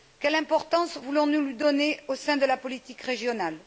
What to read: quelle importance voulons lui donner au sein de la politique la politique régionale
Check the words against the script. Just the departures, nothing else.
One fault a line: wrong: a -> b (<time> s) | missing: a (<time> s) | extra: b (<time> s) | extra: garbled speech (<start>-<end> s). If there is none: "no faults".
extra: nous (1.3 s)
missing: la politique (3.0 s)